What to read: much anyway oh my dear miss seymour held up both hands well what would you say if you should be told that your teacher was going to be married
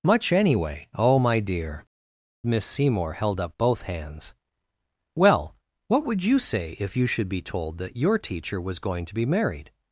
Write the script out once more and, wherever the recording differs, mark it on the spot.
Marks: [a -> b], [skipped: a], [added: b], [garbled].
much anyway oh my dear miss seymour held up both hands well what would you say if you should be told that your teacher was going to be married